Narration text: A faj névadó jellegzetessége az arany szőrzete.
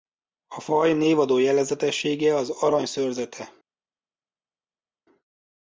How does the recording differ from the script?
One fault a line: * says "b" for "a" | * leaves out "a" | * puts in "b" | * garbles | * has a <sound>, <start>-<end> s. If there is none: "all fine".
all fine